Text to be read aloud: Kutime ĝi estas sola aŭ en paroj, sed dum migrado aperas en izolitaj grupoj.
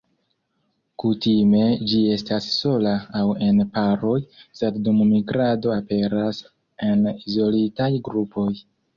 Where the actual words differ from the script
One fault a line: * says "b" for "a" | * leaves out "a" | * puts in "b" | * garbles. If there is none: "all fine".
all fine